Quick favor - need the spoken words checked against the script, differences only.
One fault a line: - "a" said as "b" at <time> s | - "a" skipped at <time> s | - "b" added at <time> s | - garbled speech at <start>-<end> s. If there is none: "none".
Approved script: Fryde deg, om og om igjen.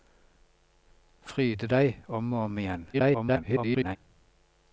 - garbled speech at 2.9-4.0 s